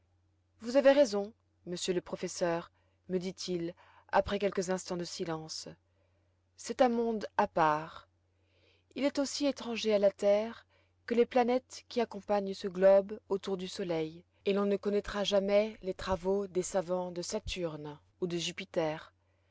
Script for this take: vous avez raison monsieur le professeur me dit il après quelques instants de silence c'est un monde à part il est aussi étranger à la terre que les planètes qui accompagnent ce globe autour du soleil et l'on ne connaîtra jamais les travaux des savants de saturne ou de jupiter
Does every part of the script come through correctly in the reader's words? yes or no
yes